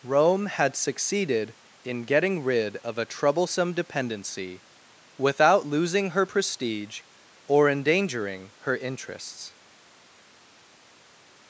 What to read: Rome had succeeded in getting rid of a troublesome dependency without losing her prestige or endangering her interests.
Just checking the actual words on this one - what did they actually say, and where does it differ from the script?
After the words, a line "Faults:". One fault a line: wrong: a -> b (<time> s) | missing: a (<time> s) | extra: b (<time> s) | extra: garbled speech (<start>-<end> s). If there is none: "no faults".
Rome had succeeded in getting rid of a troublesome dependency without losing her prestige or endangering her interests.
Faults:
no faults